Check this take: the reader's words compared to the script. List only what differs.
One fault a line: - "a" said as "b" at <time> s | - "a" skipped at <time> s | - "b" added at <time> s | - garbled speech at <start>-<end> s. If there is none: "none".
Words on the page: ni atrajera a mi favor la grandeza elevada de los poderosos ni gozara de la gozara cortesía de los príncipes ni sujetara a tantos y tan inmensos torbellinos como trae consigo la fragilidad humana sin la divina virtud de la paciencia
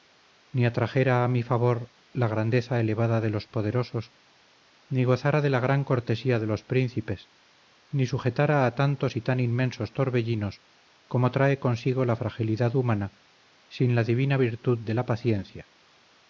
- "gozara" said as "gran" at 5.6 s